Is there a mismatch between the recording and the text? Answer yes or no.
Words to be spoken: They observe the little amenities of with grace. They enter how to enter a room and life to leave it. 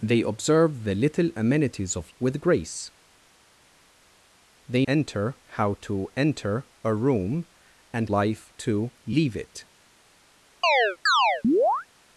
no